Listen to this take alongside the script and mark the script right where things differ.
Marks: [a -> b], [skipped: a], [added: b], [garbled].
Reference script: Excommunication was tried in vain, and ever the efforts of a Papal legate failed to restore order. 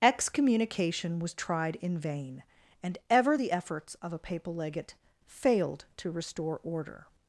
Excommunication was tried in vain, and ever the efforts of a Papal legate failed to restore order.